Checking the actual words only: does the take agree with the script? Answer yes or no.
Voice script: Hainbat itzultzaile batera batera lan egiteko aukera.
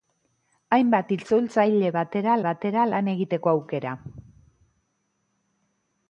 yes